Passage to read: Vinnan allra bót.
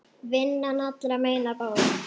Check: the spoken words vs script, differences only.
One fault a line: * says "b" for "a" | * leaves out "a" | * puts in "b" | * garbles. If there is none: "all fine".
* puts in "meina"